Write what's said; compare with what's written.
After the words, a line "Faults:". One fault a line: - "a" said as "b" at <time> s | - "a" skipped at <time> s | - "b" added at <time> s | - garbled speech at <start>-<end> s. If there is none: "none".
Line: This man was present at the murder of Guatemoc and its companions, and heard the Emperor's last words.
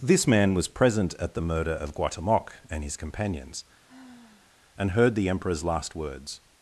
This man was present at the murder of Guatemoc and his companions, and heard the Emperor's last words.
Faults:
- "its" said as "his" at 2.8 s